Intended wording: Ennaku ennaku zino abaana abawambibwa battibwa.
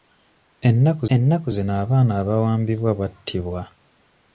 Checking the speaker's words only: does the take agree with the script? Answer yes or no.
yes